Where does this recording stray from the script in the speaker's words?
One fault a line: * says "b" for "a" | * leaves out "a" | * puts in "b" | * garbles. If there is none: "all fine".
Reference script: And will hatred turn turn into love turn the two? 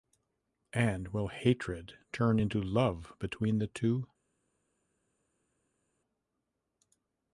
* leaves out "turn"
* says "between" for "turn"